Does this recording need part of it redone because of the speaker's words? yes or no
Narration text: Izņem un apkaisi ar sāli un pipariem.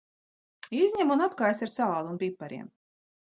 no